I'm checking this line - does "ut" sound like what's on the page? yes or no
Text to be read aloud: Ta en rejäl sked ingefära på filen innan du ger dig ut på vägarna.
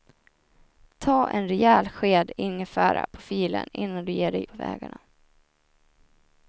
no